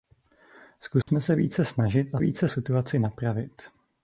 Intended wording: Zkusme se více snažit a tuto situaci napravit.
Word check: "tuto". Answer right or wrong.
wrong